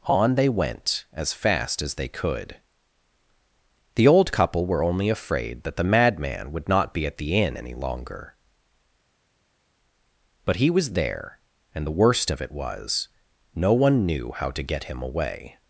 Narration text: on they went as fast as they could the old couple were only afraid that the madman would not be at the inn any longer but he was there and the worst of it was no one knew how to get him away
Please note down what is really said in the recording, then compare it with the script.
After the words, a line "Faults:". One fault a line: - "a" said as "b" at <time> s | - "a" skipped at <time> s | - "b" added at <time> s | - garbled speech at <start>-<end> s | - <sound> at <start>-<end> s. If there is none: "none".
on they went as fast as they could the old couple were only afraid that the madman would not be at the inn any longer but he was there and the worst of it was no one knew how to get him away
Faults:
none